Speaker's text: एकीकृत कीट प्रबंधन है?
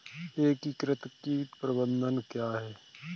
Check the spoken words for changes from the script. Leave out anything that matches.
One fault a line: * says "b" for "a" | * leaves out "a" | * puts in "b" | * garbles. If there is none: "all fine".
* puts in "क्या"